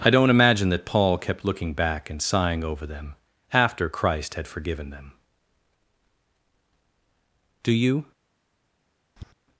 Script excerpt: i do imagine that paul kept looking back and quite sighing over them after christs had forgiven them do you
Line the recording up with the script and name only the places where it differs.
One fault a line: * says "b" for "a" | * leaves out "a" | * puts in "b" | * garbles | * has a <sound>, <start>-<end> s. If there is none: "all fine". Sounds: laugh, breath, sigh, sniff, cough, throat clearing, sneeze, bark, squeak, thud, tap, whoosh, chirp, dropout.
* says "don't" for "do"
* leaves out "quite"
* says "christ" for "christs"
* has a tap, 9.2-9.3 s